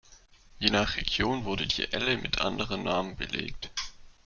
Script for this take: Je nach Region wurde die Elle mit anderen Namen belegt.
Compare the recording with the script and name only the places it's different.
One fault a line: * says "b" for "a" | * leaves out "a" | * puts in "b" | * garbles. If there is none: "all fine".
all fine